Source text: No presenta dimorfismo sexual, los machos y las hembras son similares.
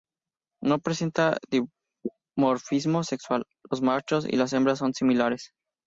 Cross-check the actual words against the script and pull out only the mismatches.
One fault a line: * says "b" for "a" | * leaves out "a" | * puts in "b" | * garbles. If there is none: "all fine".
all fine